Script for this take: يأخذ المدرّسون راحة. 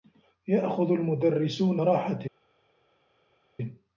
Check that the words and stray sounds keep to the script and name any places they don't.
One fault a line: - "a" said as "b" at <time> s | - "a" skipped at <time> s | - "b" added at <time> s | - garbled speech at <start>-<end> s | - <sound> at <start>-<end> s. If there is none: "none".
none